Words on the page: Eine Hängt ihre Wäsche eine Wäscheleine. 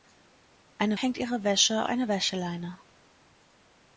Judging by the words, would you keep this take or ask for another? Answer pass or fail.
pass